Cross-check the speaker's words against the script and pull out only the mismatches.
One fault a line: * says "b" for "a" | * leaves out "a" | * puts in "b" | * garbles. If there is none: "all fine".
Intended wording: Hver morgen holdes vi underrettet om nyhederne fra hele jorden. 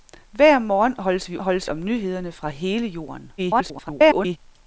* says "holdes" for "underrettet"
* garbles